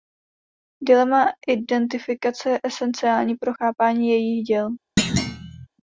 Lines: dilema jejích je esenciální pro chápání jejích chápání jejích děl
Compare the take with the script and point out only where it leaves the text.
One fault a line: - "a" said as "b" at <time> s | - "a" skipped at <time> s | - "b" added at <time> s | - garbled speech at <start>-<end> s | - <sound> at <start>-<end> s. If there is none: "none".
- "jejích" said as "identifikace" at 1.5 s
- "chápání jejích" skipped at 4.4 s
- thud at 5.0-5.7 s